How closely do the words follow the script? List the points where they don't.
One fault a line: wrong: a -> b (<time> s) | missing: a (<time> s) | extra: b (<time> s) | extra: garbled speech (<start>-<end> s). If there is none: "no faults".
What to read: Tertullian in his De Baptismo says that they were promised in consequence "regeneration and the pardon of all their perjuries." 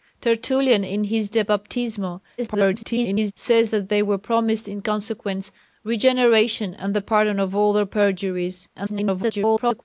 extra: garbled speech (2.4-3.3 s)
extra: garbled speech (8.7-9.8 s)